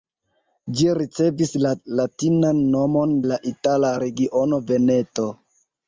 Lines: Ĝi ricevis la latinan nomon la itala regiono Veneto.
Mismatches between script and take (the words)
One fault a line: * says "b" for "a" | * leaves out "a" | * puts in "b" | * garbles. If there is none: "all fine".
all fine